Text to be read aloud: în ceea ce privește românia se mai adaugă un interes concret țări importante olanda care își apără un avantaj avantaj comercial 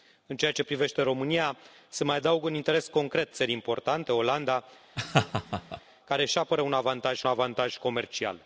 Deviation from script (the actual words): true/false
false